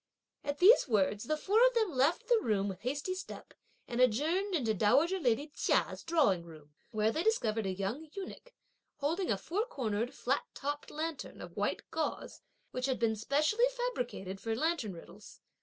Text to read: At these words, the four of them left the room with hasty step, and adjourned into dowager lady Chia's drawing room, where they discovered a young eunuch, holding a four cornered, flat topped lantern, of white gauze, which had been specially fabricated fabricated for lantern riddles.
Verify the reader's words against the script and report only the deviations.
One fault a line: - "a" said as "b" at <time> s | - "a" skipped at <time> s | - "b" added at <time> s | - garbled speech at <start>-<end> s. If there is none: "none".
- "fabricated" skipped at 14.4 s